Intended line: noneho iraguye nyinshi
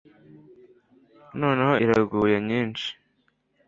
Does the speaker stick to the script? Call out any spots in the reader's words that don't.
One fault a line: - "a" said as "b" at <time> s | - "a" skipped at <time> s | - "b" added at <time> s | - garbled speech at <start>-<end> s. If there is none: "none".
none